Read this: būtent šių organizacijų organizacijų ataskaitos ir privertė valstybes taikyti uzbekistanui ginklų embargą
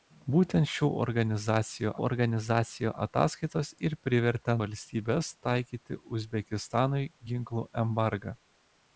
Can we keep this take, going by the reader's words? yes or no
yes